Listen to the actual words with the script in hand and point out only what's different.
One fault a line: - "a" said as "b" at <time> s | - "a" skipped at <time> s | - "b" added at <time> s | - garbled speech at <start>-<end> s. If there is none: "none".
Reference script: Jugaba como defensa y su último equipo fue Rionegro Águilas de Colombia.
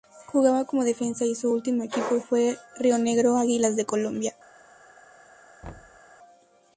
none